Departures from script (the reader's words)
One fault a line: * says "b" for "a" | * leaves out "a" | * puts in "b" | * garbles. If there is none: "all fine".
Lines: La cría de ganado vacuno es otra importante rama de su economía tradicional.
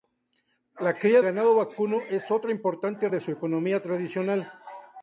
* leaves out "de"
* leaves out "rama"